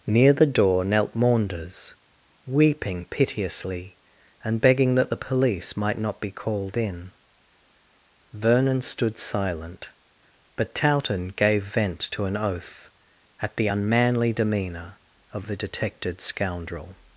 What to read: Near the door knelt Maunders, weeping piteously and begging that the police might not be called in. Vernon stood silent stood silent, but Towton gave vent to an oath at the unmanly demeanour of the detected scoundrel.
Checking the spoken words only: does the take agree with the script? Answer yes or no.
no